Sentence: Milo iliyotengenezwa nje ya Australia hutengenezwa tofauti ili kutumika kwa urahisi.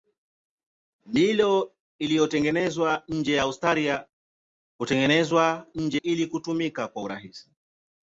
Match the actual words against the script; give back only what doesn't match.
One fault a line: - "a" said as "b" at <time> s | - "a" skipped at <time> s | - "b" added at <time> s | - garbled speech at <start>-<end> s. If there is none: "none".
- "tofauti" said as "nje" at 5.7 s